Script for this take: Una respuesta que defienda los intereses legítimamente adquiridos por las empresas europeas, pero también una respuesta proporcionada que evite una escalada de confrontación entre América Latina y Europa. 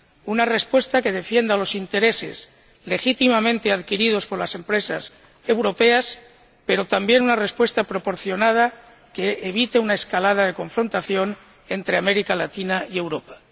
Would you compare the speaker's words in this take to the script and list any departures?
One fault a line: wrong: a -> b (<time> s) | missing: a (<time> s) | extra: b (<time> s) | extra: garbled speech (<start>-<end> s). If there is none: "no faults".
no faults